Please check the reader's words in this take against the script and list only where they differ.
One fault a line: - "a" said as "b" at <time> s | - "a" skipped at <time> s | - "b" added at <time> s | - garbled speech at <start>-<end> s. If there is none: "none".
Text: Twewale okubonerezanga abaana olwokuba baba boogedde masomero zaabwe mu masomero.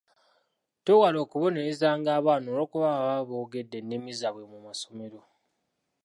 - "masomero" said as "ennimi" at 3.8 s